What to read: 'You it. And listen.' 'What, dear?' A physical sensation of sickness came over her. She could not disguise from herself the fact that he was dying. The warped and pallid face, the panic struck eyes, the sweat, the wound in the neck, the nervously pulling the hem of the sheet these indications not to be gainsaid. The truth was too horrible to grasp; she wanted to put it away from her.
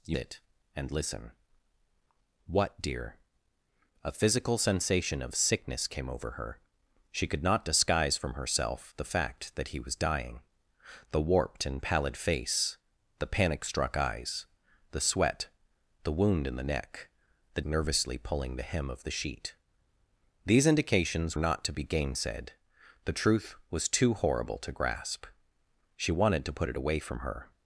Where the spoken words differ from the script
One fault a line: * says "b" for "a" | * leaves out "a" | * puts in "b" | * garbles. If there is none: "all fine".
all fine